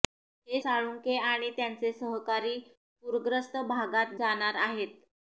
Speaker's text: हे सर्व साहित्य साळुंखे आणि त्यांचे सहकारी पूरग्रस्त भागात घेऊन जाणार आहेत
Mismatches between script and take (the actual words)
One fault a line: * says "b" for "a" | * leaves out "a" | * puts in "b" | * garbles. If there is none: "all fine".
* leaves out "सर्व साहित्य"
* leaves out "घेऊन"